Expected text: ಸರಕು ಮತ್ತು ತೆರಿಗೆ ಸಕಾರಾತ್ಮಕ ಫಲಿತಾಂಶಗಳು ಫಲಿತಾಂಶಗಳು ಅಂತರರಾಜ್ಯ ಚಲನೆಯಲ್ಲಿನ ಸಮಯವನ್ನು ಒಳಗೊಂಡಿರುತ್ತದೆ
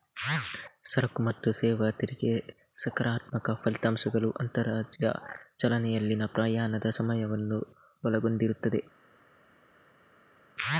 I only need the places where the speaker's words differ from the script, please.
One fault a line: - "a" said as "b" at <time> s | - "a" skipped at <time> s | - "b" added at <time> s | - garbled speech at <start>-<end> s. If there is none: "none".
- "ಸೇವಾ" added at 1.5 s
- "ಫಲಿತಾಂಶಗಳು" skipped at 4.3 s
- "ಪ್ರಯಾಣದ" added at 6.3 s